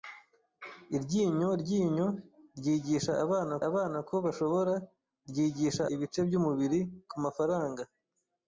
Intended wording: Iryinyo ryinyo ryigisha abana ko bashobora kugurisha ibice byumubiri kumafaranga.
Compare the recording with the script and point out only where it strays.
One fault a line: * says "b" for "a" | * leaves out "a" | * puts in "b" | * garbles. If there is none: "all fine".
* puts in "abana"
* says "ryigisha" for "kugurisha"